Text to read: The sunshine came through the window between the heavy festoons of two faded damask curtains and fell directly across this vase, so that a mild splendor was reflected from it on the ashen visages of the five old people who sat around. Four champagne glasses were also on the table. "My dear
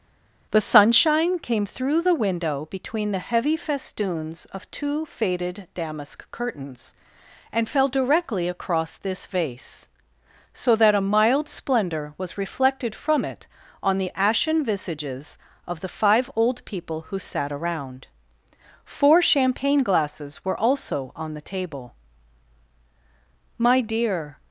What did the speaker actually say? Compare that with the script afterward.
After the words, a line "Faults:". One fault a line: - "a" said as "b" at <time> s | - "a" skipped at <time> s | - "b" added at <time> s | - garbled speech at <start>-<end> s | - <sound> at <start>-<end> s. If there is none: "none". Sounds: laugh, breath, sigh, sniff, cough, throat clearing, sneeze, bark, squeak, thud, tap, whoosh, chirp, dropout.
The sunshine came through the window between the heavy festoons of two faded damask curtains and fell directly across this vase, so that a mild splendor was reflected from it on the ashen visages of the five old people who sat around. Four champagne glasses were also on the table. "My dear
Faults:
none